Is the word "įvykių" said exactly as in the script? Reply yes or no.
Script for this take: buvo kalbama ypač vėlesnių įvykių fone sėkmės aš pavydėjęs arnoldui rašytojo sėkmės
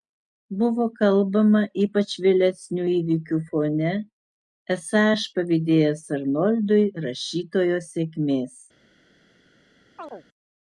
yes